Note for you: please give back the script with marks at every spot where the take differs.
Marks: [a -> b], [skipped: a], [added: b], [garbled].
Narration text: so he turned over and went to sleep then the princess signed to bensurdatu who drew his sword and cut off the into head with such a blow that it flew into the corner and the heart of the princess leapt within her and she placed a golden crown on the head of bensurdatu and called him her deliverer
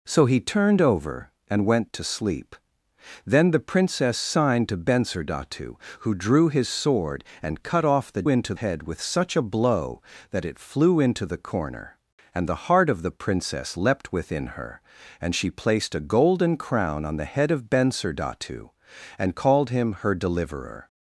so he turned over and went to sleep then the princess signed to bensurdatu who drew his sword and cut off the into head with such a blow that it flew into the corner and the heart of the princess leapt within her and she placed a golden crown on the head of bensurdatu and called him her deliverer